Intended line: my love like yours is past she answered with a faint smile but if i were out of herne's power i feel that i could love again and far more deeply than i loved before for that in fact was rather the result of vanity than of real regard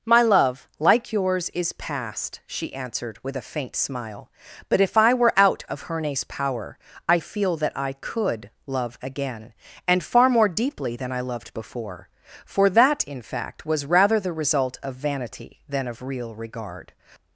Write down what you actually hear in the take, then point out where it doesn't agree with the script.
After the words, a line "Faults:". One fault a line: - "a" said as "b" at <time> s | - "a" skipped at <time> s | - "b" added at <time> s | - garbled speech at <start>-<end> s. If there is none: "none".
my love like yours is past she answered with a faint smile but if i were out of herne's power i feel that i could love again and far more deeply than i loved before for that in fact was rather the result of vanity than of real regard
Faults:
none